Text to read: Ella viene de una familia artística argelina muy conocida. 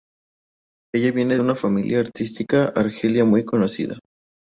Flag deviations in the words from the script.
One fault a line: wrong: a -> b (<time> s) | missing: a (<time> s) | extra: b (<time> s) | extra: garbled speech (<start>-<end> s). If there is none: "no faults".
no faults